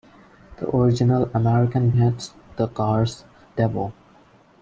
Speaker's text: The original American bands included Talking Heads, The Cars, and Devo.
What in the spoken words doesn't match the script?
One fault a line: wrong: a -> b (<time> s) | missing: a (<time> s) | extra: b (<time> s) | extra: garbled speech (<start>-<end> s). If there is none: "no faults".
missing: bands included Talking (1.9 s)
missing: and (3.2 s)